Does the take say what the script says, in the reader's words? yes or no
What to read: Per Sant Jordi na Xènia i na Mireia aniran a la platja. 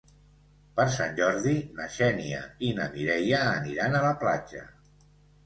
yes